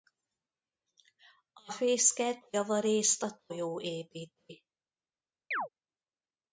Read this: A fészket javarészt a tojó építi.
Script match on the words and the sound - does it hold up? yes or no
no